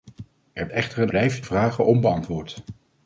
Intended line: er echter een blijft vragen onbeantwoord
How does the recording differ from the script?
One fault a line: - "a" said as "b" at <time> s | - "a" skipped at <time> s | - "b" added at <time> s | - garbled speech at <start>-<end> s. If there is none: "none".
none